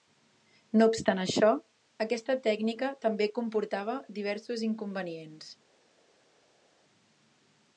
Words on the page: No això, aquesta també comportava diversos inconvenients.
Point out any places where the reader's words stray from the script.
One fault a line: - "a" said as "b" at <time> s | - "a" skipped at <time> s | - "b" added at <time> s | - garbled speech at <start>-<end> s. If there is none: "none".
- "obstant" added at 0.9 s
- "tècnica" added at 2.5 s